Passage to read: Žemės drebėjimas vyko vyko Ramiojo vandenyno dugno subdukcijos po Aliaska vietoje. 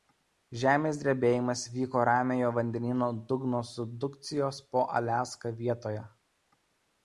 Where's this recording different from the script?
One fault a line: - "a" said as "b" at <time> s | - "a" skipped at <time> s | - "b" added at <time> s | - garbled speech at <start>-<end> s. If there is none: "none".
- "vyko" skipped at 2.0 s